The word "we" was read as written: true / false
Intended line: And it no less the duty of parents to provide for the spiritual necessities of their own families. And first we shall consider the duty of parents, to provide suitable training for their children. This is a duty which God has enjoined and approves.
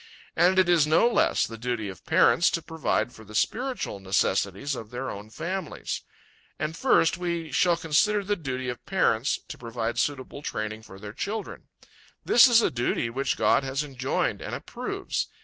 true